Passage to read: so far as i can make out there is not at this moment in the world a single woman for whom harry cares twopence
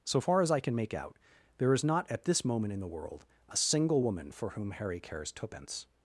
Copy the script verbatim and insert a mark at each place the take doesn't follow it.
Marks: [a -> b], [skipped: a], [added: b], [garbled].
so far as i can make out there is not at this moment in the world a single woman for whom harry cares twopence